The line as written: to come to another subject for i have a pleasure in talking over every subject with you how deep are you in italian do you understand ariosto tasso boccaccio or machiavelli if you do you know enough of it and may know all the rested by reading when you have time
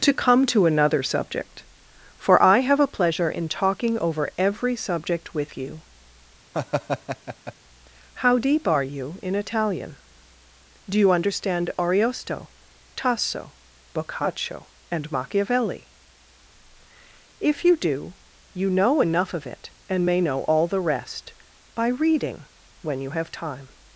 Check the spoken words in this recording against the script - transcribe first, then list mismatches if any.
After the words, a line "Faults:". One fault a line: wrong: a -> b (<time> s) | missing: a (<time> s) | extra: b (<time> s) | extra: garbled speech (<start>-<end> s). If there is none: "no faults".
to come to another subject for i have a pleasure in talking over every subject with you how deep are you in italian do you understand ariosto tasso boccaccio and machiavelli if you do you know enough of it and may know all the rest by reading when you have time
Faults:
wrong: or -> and (14.9 s)
wrong: rested -> rest (20.8 s)